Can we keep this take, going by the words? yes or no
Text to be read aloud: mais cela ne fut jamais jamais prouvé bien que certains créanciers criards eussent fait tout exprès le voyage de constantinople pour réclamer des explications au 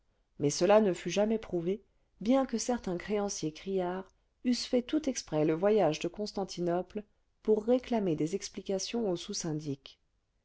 no